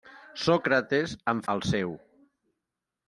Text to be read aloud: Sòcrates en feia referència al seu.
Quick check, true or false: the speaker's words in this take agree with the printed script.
false